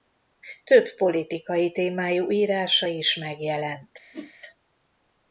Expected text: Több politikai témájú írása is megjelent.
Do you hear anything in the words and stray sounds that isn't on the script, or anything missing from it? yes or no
yes